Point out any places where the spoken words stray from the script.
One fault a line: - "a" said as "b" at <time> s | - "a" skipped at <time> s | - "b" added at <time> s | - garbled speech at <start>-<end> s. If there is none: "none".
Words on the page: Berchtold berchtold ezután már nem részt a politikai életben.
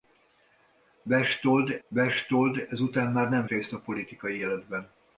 none